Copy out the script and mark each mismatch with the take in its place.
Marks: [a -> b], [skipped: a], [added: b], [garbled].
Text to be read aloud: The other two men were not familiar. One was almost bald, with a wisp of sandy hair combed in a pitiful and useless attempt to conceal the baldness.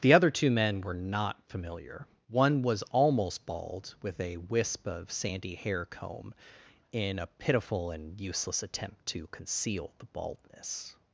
The other two men were not familiar. One was almost bald, with a wisp of sandy hair [combed -> comb] in a pitiful and useless attempt to conceal the baldness.